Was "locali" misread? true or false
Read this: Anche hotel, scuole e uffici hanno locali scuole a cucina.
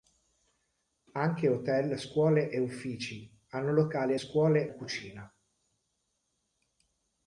false